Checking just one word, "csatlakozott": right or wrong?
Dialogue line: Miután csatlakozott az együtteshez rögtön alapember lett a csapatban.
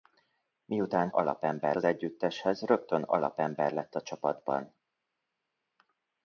wrong